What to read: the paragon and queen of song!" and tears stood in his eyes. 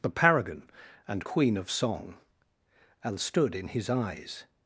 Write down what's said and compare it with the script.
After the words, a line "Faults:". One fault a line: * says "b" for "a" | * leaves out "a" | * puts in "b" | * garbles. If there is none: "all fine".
the paragon and queen of song!" and stood in his eyes.
Faults:
* leaves out "tears"